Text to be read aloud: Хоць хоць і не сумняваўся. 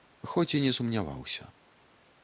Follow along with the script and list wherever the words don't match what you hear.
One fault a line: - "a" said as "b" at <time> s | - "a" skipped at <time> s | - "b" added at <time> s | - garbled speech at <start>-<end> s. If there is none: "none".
- "хоць" skipped at 0.5 s